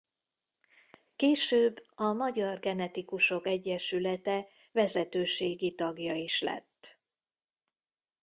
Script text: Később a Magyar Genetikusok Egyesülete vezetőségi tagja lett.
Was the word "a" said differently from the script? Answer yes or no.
no